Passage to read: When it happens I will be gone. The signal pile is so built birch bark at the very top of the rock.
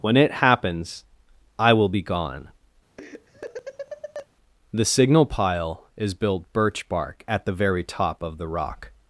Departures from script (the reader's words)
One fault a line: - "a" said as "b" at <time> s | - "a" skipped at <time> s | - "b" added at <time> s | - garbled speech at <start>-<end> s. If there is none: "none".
- "so" skipped at 6.1 s